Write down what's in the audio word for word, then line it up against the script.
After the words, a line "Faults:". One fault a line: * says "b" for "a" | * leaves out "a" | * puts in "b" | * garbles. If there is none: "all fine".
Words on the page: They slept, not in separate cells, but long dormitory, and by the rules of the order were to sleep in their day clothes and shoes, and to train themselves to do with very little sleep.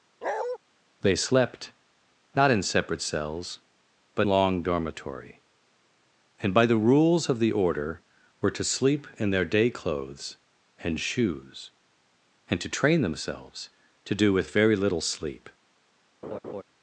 They slept, not in separate cells, but long dormitory, and by the rules of the order were to sleep in their day clothes and shoes, and to train themselves to do with very little sleep.
Faults:
all fine